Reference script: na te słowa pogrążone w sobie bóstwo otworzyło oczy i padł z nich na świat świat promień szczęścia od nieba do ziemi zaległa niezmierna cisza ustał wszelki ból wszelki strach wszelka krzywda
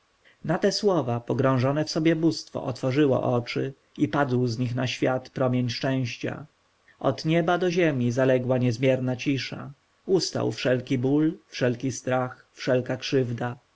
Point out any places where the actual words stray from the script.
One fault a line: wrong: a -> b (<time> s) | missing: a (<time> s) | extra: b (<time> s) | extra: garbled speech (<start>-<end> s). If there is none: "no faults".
missing: świat (5.3 s)